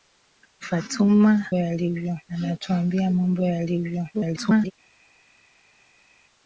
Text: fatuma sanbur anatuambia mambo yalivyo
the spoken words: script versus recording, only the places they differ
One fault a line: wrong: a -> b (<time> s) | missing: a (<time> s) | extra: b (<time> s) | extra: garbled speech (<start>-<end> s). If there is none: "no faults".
wrong: sanbur -> yalivyo (1.5 s)
extra: garbled speech (4.1-4.7 s)